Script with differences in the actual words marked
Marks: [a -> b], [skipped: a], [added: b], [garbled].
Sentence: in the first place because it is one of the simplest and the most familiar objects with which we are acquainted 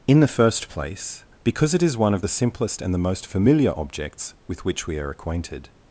in the first place because it is one of the simplest and the most familiar objects with which we are acquainted